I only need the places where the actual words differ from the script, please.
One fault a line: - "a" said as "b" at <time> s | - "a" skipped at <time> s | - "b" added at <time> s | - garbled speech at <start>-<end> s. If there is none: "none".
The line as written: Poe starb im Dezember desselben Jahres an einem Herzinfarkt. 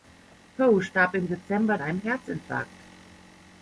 - "desselben Jahres an" skipped at 1.8 s